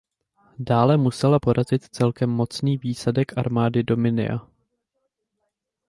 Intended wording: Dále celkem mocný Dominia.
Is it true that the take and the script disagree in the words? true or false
true